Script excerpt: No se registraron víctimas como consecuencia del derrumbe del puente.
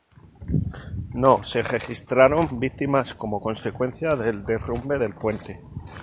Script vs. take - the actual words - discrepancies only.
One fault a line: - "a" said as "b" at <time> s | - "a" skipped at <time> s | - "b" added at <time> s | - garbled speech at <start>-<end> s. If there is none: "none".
none